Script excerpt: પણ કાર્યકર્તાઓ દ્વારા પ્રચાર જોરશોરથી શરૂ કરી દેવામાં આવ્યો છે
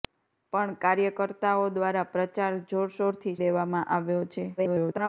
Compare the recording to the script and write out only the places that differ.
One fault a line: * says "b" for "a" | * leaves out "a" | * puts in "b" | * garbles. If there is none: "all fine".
* leaves out "શરૂ કરી"
* garbles